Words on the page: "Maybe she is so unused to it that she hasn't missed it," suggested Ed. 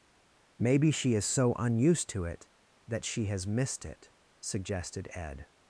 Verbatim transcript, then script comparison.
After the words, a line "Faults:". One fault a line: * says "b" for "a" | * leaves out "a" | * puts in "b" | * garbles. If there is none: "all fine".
"Maybe she is so unused to it that she has missed it," suggested Ed.
Faults:
* says "has" for "hasn't"